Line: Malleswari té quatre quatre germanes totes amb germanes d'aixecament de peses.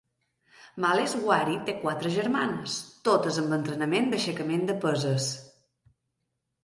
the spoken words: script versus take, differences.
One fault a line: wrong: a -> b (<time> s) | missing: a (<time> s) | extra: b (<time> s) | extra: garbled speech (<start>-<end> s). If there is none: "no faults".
missing: quatre (2.1 s)
wrong: germanes -> entrenament (3.6 s)